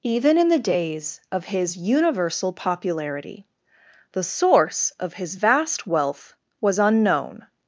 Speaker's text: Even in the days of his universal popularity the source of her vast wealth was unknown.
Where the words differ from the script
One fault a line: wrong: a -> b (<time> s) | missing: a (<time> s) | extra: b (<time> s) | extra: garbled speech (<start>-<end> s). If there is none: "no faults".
wrong: her -> his (5.1 s)